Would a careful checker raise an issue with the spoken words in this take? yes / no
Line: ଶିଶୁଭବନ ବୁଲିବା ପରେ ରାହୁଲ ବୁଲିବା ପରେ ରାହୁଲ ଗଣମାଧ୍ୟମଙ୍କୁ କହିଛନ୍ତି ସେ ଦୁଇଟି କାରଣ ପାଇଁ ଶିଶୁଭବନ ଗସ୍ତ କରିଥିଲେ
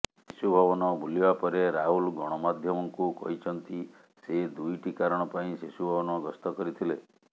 yes